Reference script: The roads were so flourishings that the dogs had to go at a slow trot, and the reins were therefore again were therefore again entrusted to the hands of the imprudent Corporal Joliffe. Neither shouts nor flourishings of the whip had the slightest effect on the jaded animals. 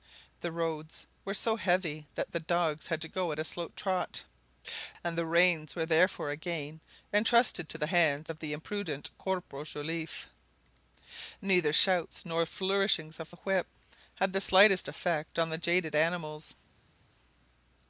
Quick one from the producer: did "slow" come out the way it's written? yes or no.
yes